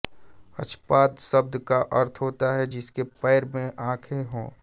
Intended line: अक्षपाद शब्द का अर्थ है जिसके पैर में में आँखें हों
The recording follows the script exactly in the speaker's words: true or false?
false